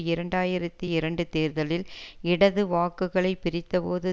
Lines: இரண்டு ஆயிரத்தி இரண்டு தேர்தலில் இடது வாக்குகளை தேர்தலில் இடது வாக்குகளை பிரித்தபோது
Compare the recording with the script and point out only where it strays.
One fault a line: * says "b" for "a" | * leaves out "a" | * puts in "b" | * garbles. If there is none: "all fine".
* leaves out "தேர்தலில் இடது வாக்குகளை"